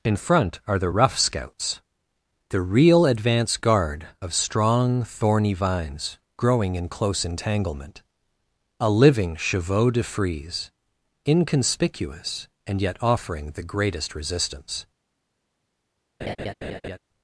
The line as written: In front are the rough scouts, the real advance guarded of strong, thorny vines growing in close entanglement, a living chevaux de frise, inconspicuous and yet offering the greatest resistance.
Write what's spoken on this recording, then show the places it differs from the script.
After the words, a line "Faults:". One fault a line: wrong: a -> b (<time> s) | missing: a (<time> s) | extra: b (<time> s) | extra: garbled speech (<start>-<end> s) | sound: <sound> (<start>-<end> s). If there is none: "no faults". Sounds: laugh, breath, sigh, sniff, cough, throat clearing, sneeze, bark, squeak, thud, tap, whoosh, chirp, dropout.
In front are the rough scouts, the real advance guard of strong, thorny vines growing in close entanglement, a living chevaux de frise, inconspicuous and yet offering the greatest resistance.
Faults:
wrong: guarded -> guard (3.6 s)
sound: laugh (16.2-17.0 s)